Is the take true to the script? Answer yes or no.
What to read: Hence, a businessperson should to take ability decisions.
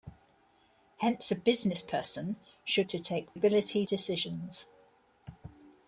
yes